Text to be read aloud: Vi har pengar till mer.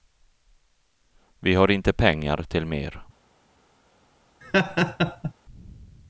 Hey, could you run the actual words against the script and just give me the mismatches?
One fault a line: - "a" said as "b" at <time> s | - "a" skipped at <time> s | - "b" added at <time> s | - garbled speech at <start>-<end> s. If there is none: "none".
- "inte" added at 1.7 s